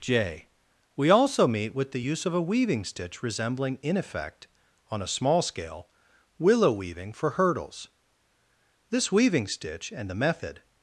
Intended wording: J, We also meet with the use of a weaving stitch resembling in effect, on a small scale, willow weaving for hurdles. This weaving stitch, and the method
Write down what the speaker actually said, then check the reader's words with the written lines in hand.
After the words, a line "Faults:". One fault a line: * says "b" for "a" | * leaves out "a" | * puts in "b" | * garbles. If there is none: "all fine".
J, We also meet with the use of a weaving stitch resembling in effect, on a small scale, willow weaving for hurdles. This weaving stitch, and the method
Faults:
all fine